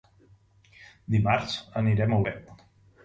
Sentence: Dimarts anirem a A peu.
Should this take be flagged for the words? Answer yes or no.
no